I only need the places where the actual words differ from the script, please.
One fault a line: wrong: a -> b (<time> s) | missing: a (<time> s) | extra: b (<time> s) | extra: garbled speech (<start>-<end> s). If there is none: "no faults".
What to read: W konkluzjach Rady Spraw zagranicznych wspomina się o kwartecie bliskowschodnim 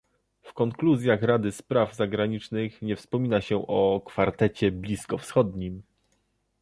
extra: nie (2.8 s)